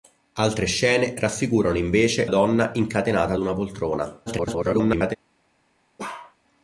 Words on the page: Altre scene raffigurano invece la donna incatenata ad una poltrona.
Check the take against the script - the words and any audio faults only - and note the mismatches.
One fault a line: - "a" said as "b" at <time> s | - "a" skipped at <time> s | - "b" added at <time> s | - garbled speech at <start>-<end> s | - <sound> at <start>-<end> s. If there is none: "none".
- "la" skipped at 2.3 s
- garbled speech at 4.3-5.2 s
- bark at 6.0-6.4 s